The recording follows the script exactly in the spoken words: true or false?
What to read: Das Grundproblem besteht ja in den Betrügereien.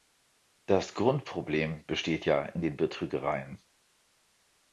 true